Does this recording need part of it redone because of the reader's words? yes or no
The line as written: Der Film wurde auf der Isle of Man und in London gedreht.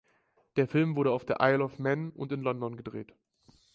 no